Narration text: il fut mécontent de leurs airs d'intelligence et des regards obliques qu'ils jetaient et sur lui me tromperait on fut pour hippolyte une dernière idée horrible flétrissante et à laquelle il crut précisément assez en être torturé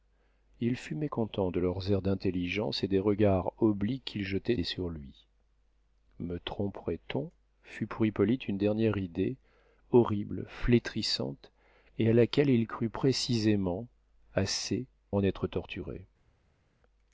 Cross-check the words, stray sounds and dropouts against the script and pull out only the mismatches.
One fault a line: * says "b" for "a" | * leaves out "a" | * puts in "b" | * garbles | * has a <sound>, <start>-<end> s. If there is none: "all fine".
all fine